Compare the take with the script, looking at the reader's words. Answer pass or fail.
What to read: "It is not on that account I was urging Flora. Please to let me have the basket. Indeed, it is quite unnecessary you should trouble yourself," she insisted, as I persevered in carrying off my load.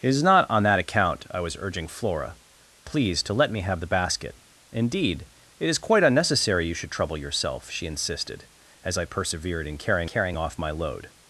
fail